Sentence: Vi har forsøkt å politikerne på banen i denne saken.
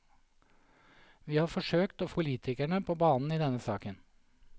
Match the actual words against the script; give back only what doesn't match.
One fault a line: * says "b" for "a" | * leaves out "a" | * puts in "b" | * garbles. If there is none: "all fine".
all fine